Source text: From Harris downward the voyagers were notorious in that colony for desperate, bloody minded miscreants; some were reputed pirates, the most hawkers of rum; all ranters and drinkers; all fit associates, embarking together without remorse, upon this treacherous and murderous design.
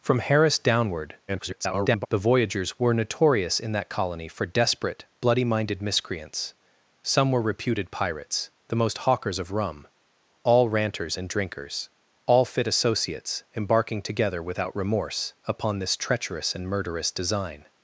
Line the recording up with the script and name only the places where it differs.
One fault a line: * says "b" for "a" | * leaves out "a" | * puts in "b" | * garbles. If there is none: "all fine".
* garbles